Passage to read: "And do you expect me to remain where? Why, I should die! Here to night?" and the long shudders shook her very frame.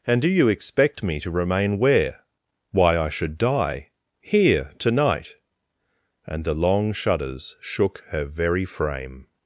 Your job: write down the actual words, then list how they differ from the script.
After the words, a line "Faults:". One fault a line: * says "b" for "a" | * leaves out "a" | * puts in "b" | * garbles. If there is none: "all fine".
"And do you expect me to remain where? Why, I should die! Here to night?" and the long shudders shook her very frame.
Faults:
all fine